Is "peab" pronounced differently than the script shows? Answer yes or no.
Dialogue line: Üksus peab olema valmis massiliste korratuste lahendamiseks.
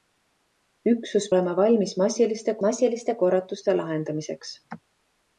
yes